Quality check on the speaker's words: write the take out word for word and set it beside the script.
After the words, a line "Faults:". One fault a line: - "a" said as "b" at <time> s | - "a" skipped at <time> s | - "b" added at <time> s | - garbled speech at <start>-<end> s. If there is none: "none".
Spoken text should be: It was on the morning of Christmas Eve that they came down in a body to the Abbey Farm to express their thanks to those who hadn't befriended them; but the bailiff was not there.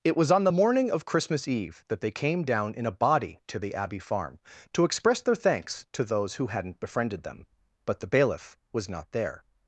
It was on the morning of Christmas Eve that they came down in a body to the Abbey Farm to express their thanks to those who hadn't befriended them; but the bailiff was not there.
Faults:
none